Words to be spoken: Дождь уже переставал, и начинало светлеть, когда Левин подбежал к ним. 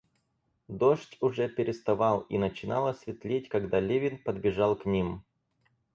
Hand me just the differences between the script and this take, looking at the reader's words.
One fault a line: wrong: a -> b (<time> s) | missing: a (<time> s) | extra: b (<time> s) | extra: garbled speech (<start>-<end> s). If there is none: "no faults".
no faults